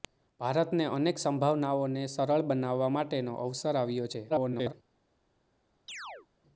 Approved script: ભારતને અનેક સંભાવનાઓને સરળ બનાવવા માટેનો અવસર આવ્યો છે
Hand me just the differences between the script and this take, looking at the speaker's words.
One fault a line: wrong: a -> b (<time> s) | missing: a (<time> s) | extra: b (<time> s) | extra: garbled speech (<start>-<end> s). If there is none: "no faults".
extra: garbled speech (4.3-4.7 s)